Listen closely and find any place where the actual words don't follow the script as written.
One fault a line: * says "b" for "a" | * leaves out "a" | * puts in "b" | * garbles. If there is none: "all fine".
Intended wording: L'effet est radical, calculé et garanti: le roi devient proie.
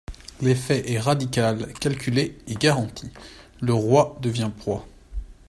all fine